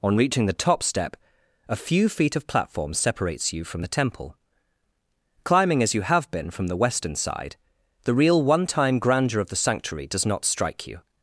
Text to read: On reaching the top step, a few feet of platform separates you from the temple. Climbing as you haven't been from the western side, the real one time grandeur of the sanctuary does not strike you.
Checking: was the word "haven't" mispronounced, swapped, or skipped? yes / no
yes